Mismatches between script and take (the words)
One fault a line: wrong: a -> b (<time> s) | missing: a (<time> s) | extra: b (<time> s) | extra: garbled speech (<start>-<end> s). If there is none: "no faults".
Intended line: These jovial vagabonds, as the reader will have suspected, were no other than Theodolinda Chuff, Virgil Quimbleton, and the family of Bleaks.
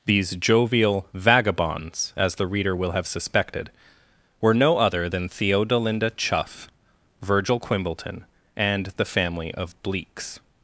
no faults